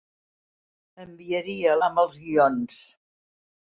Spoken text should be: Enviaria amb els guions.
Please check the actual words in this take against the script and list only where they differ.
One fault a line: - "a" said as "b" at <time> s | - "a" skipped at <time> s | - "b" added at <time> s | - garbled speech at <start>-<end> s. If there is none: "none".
none